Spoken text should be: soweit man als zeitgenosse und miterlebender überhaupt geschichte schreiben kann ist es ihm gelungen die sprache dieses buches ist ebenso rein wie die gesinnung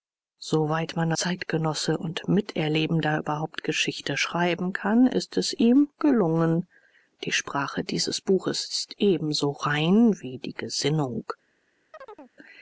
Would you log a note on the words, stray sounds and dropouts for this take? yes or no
yes